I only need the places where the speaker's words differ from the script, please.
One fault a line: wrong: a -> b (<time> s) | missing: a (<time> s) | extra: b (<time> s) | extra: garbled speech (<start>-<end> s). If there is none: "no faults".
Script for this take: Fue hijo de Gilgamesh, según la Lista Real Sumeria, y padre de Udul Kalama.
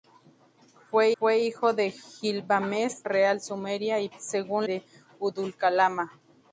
extra: fue (1.2 s)
missing: según la Lista (3.0 s)
wrong: padre -> según (4.2 s)